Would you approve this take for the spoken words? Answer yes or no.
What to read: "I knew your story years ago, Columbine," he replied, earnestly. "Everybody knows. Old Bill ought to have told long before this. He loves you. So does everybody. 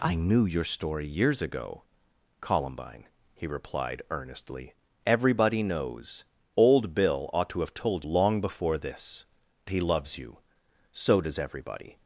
yes